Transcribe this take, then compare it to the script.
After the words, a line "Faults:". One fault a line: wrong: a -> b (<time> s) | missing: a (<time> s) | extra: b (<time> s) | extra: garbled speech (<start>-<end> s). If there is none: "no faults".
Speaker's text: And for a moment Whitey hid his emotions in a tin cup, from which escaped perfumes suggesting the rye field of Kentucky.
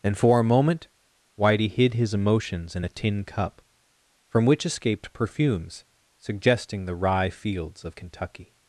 And for a moment Whitey hid his emotions in a tin cup, from which escaped perfumes suggesting the rye fields of Kentucky.
Faults:
wrong: field -> fields (7.3 s)